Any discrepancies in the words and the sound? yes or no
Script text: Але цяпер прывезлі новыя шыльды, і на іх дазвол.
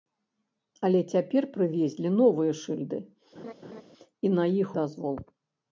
yes